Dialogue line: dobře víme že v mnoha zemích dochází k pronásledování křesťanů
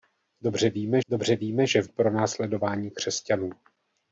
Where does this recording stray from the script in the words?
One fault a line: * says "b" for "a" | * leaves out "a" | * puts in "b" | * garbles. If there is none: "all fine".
* puts in "dobře víme"
* leaves out "mnoha zemích dochází"